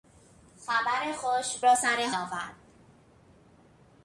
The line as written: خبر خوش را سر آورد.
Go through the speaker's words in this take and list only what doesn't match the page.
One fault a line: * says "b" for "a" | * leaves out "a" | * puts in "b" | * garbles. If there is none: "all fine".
all fine